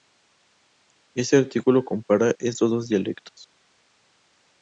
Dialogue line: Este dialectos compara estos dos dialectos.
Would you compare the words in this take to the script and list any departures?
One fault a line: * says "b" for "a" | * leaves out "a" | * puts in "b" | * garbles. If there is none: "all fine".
* says "artículo" for "dialectos"